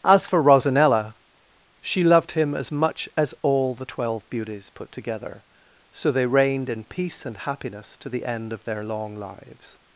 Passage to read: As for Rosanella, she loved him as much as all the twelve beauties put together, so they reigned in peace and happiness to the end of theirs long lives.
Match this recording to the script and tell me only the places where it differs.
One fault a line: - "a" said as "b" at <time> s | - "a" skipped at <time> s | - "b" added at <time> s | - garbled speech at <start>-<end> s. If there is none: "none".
- "theirs" said as "their" at 8.6 s